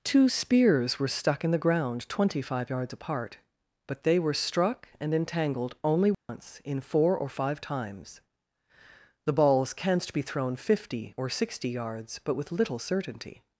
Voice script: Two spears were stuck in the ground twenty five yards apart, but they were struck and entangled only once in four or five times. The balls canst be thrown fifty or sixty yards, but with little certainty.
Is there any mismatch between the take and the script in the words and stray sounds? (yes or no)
yes